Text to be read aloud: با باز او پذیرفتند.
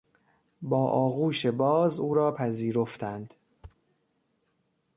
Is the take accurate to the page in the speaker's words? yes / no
no